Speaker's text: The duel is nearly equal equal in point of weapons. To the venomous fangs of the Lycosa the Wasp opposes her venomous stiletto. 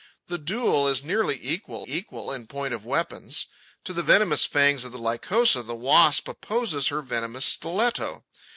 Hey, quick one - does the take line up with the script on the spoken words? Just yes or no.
yes